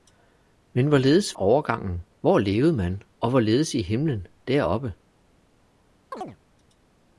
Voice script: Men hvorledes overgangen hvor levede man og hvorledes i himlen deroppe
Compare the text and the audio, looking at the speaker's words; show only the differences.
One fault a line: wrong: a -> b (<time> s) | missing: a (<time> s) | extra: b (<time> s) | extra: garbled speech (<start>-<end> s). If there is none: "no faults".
no faults